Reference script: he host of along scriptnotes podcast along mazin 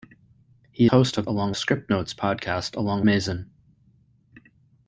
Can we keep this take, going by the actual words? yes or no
yes